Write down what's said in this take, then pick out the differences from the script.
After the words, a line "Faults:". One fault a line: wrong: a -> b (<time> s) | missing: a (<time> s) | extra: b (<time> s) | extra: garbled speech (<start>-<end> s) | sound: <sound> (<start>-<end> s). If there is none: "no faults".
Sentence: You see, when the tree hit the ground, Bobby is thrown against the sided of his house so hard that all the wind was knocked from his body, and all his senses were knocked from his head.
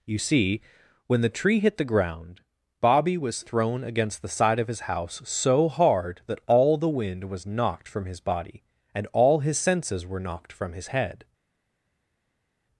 You see, when the tree hit the ground, Bobby was thrown against the side of his house so hard that all the wind was knocked from his body, and all his senses were knocked from his head.
Faults:
wrong: is -> was (3.2 s)
wrong: sided -> side (4.3 s)